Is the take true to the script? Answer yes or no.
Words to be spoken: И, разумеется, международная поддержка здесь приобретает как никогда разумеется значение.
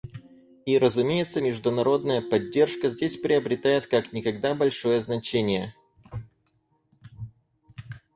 no